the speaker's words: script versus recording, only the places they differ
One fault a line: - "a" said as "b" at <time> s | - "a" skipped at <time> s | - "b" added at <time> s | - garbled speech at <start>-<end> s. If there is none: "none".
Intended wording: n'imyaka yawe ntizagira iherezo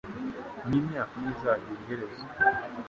- "yawe" skipped at 1.1 s